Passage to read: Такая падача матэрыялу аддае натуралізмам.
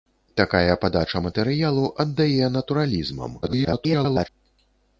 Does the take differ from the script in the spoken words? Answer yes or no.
yes